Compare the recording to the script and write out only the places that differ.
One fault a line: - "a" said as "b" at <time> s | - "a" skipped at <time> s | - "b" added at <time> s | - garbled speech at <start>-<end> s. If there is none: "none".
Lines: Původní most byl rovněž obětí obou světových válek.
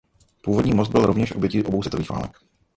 none